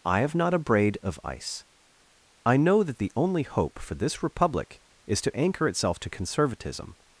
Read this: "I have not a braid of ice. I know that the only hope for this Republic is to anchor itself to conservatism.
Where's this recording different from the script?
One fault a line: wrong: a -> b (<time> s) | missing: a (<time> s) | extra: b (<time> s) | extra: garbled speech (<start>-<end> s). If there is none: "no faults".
no faults